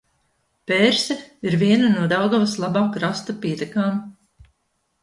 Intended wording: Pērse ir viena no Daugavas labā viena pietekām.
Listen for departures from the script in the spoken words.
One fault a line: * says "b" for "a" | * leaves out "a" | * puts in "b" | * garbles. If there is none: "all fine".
* says "krasta" for "viena"